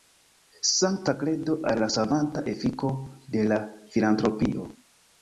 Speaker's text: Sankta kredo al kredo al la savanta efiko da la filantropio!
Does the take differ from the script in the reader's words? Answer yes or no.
yes